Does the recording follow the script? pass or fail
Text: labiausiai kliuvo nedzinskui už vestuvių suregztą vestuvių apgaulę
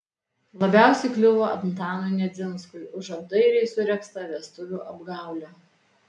fail